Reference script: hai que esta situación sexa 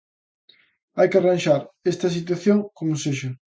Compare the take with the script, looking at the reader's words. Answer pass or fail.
fail